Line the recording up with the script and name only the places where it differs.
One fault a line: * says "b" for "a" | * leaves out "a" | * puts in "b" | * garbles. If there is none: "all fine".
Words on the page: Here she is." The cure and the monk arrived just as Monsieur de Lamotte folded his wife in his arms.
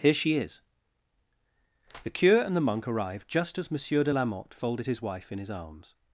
all fine